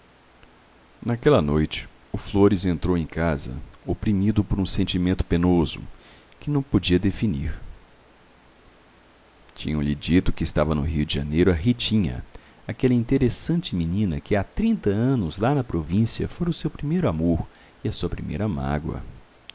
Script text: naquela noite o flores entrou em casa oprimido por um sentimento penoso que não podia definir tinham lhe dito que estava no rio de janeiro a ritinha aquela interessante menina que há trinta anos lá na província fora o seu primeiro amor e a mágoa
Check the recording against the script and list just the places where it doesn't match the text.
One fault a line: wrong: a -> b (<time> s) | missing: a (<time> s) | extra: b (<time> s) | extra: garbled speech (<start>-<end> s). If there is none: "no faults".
extra: sua primeira (17.9 s)